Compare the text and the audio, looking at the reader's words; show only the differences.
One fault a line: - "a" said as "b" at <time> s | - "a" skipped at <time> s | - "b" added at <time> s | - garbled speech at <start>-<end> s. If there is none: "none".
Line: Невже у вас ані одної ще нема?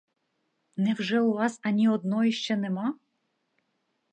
none